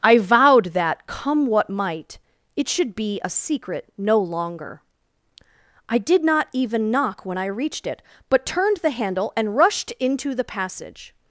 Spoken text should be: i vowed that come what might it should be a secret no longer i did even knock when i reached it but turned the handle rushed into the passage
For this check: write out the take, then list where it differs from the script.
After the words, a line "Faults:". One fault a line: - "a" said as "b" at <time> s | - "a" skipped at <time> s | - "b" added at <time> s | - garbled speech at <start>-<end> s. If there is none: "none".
i vowed that come what might it should be a secret no longer i did not even knock when i reached it but turned the handle and rushed into the passage
Faults:
- "not" added at 6.2 s
- "and" added at 9.3 s